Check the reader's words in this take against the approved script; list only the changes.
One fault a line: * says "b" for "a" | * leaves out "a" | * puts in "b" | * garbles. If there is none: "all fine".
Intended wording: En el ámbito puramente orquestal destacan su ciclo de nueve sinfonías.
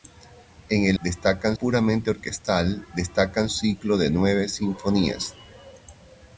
* says "destacan" for "ámbito"
* leaves out "su"